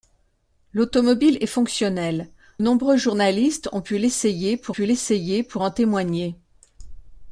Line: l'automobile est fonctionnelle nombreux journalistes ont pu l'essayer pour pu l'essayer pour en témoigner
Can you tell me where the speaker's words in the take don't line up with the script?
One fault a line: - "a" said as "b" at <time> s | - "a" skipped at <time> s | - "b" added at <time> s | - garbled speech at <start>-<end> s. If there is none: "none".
none